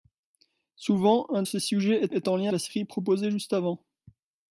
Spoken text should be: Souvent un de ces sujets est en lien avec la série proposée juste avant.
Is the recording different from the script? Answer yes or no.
yes